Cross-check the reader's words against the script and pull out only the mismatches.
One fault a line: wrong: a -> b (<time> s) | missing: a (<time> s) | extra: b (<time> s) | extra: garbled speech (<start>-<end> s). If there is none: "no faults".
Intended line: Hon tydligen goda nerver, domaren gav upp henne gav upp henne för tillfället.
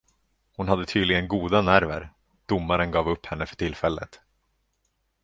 extra: hade (0.7 s)
missing: gav upp henne (3.5 s)